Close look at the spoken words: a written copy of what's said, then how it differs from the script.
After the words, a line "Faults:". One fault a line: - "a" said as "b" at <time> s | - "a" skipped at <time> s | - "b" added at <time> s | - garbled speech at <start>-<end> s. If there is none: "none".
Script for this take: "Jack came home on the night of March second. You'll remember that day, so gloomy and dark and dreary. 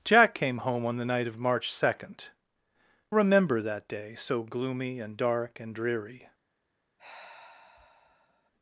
"Jack came home on the night of March second. Remember that day, so gloomy and dark and dreary.
Faults:
- "You'll" skipped at 2.3 s